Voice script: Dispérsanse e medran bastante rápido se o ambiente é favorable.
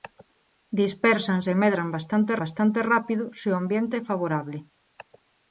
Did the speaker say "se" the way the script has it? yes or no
yes